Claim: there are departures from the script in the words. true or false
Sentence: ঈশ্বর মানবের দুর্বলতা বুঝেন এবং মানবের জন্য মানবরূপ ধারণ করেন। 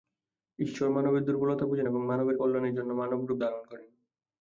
true